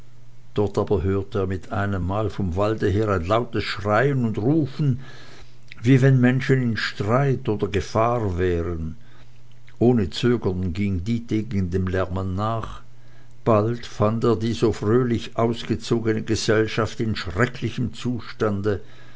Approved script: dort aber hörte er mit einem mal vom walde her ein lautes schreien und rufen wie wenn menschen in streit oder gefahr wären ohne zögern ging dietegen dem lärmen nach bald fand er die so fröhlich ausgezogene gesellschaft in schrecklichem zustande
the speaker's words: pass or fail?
pass